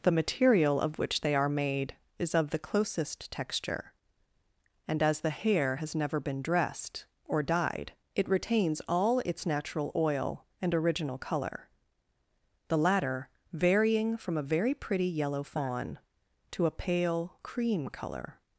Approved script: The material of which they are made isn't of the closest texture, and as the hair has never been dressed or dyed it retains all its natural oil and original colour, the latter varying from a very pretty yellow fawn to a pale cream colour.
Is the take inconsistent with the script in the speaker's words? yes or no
yes